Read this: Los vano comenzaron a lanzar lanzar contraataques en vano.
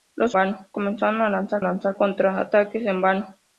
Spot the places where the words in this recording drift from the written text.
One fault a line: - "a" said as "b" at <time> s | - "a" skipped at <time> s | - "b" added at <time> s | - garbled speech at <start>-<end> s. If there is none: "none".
none